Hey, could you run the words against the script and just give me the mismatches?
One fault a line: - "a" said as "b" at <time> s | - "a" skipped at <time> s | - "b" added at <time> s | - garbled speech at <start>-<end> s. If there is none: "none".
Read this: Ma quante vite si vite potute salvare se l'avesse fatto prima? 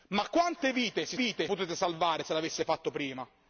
none